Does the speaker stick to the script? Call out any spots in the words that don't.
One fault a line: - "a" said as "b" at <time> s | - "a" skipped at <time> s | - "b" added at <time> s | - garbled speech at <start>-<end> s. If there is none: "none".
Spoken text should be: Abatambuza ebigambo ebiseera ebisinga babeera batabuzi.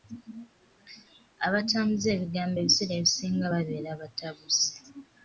none